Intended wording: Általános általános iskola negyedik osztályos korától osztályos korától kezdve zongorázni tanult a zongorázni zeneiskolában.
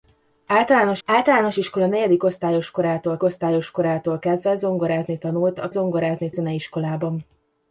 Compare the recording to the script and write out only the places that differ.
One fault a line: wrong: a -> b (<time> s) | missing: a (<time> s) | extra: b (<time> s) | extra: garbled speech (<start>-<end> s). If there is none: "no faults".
no faults